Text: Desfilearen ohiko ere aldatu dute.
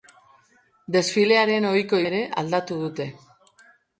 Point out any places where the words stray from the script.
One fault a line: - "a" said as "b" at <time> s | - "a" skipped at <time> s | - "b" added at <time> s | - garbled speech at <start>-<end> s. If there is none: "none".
none